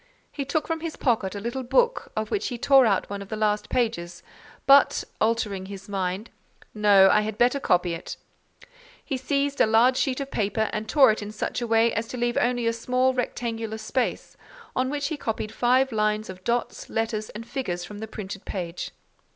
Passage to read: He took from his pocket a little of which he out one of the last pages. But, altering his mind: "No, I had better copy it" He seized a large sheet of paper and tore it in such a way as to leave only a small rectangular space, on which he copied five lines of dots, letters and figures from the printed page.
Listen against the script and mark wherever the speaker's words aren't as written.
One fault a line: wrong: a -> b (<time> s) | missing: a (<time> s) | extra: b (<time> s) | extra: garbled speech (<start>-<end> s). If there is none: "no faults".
extra: book (1.6 s)
extra: tore (2.6 s)